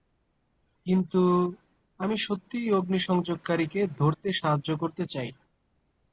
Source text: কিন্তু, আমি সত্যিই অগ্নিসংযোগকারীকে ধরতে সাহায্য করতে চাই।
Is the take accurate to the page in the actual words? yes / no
yes